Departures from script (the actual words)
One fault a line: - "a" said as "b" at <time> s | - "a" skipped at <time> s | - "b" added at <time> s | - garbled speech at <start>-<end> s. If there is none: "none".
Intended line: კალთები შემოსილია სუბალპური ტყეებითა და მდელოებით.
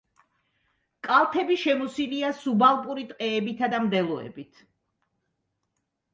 none